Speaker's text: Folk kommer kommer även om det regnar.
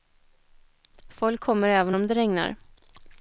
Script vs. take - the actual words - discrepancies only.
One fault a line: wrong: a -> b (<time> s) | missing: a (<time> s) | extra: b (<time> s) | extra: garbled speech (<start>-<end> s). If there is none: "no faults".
missing: kommer (1.7 s)